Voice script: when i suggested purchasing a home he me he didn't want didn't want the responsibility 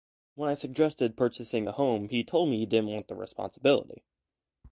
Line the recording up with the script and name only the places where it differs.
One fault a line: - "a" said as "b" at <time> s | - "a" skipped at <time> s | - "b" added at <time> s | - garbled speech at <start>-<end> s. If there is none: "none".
- "told" added at 2.2 s
- "didn't want" skipped at 3.1 s